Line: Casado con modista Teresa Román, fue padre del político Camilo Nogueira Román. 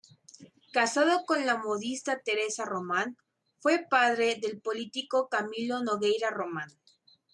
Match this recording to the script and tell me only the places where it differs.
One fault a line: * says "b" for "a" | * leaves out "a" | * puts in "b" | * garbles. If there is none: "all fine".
* puts in "la"